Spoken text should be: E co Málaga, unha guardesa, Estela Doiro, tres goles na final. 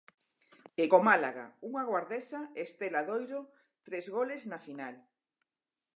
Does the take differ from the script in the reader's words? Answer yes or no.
no